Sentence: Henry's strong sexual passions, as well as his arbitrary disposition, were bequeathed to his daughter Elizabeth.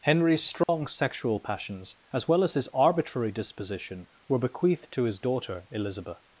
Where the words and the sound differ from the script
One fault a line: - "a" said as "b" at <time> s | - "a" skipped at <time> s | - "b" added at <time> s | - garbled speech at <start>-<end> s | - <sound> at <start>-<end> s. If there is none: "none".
- dropout at 0.6-0.7 s